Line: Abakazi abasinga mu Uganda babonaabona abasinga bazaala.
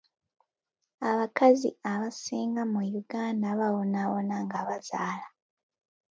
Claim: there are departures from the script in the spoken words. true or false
true